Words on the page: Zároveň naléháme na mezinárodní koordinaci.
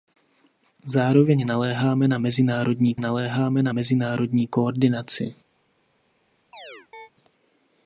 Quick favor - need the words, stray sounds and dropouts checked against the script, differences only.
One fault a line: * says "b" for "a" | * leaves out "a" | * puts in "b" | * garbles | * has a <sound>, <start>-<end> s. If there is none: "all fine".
* puts in "naléháme na mezinárodní"
* has a chirp, 6.5-7.1 s